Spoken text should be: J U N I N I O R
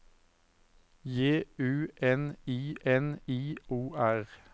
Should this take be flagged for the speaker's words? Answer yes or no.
no